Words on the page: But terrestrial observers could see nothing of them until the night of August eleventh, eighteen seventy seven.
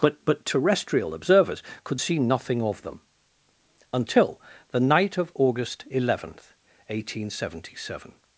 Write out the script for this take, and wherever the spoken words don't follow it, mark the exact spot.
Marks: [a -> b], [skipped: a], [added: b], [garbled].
But [added: but] terrestrial observers could see nothing of them until the night of August eleventh, eighteen seventy seven.